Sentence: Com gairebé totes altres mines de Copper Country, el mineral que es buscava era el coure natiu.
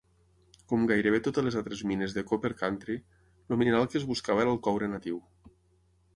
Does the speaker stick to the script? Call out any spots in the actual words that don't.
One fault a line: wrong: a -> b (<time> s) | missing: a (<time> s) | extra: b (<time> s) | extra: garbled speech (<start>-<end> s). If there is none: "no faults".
extra: les (1.5 s)